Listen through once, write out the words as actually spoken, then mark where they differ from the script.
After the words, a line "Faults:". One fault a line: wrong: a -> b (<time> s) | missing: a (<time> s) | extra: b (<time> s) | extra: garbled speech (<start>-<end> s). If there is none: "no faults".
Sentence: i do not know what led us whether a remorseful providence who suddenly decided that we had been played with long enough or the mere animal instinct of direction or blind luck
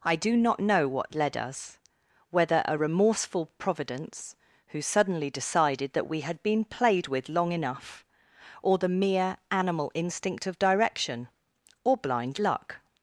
i do not know what led us whether a remorseful providence who suddenly decided that we had been played with long enough or the mere animal instinct of direction or blind luck
Faults:
no faults